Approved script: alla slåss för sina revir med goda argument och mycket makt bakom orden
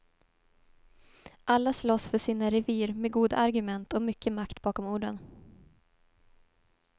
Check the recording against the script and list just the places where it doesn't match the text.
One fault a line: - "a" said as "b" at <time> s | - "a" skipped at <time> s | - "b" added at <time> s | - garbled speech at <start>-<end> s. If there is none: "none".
none